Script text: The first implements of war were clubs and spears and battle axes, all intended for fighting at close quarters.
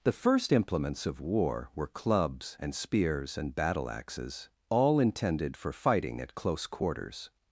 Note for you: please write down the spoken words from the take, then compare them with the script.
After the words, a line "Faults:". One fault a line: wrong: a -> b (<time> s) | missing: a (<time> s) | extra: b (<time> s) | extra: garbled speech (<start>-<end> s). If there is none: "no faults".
The first implements of war were clubs and spears and battle axes, all intended for fighting at close quarters.
Faults:
no faults